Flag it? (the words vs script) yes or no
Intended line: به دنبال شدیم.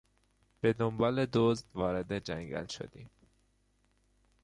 yes